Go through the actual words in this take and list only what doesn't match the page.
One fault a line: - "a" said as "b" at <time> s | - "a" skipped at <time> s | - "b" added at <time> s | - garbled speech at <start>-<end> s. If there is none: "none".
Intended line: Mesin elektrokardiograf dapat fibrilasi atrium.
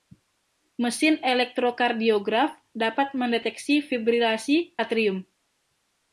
- "mendeteksi" added at 3.1 s